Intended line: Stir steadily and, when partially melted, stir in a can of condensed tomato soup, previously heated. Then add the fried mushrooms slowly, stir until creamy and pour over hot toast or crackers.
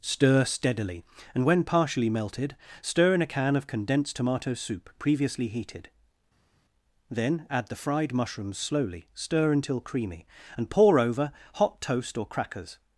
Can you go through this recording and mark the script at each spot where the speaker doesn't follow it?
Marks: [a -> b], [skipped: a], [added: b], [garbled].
Stir steadily and, when partially melted, stir in a can of condensed tomato soup, previously heated. Then add the fried mushrooms slowly, stir until creamy and pour over hot toast or crackers.